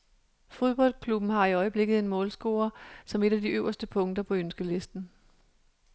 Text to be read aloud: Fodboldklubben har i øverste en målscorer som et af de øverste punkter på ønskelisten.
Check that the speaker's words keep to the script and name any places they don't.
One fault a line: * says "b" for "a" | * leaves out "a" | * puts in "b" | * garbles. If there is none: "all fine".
* says "øjeblikket" for "øverste"